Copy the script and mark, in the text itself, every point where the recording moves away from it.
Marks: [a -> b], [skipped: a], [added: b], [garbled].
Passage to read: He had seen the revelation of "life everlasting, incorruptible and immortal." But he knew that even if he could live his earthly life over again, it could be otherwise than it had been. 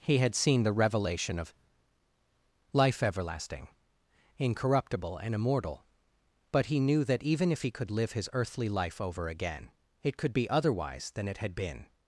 He had seen the revelation of "life everlasting, incorruptible and immortal." But he knew that even if he could live his earthly life over again, it could be otherwise than it had been.